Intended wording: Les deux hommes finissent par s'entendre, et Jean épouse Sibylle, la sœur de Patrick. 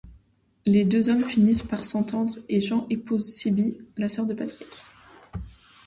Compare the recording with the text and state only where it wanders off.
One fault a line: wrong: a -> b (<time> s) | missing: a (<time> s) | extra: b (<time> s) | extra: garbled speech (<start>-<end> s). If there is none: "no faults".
no faults